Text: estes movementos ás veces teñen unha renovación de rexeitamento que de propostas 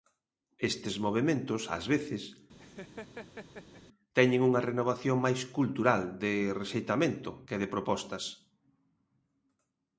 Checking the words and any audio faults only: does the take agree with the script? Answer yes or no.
no